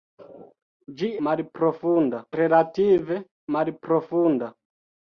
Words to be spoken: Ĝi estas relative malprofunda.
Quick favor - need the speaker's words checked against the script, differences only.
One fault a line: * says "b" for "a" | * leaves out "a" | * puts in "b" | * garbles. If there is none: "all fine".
* says "malprofunda" for "estas"